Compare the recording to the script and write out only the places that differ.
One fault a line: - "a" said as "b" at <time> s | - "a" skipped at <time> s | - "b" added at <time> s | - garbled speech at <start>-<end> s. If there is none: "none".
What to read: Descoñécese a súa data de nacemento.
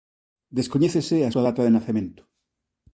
none